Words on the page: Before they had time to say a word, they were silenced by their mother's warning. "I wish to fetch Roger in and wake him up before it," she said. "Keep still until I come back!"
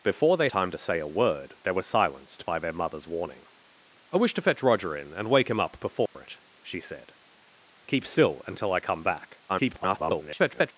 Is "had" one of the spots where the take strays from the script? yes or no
yes